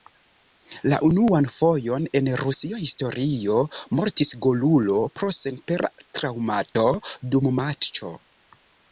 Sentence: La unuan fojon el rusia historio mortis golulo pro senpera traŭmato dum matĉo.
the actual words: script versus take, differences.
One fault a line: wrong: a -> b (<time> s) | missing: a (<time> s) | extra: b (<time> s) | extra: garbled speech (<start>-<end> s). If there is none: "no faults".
wrong: el -> en (2.2 s)